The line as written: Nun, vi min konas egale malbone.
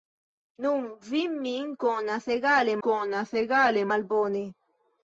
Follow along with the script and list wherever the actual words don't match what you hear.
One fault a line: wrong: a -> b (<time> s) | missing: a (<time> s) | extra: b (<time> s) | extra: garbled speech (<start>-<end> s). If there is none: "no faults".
extra: konas egale (2.9 s)